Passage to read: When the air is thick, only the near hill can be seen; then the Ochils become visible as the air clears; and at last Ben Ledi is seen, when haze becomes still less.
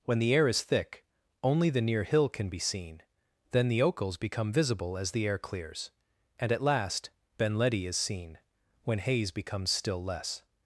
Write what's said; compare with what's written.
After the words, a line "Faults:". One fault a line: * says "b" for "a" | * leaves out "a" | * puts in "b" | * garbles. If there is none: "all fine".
When the air is thick, only the near hill can be seen; then the Ochils become visible as the air clears; and at last Ben Ledi is seen, when haze becomes still less.
Faults:
all fine